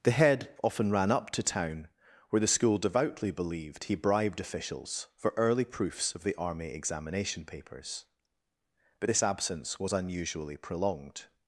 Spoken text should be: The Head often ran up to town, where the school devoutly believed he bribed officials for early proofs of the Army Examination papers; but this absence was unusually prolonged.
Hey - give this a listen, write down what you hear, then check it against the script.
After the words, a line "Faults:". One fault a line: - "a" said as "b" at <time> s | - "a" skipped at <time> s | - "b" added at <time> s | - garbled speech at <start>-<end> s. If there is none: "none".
The Head often ran up to town, where the school devoutly believed he bribed officials for early proofs of the Army Examination papers; but this absence was unusually prolonged.
Faults:
none